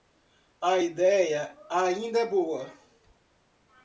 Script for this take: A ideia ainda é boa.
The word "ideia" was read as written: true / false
true